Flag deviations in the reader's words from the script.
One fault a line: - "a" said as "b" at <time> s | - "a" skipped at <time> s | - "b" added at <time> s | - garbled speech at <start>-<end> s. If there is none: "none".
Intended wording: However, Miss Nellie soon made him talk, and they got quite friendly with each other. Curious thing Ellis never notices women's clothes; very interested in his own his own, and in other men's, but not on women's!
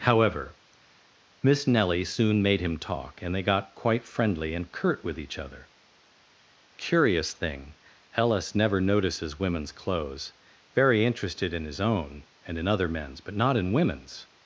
- "and curt" added at 4.5 s
- "his own" skipped at 12.2 s
- "on" said as "in" at 13.6 s